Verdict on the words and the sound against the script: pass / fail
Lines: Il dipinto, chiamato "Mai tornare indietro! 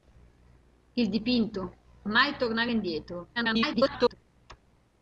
fail